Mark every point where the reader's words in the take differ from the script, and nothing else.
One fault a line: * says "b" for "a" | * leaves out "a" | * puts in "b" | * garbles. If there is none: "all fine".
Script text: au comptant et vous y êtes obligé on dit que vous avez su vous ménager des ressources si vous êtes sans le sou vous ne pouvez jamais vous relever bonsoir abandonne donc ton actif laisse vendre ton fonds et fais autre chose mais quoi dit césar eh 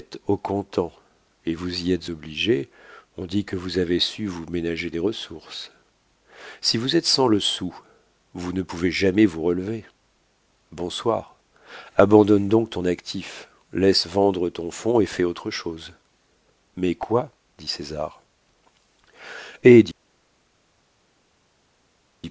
all fine